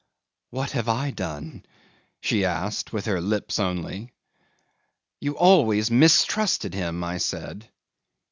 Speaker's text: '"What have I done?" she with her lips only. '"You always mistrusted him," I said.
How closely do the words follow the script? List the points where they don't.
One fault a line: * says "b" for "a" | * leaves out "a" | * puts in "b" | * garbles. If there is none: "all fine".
* puts in "asked"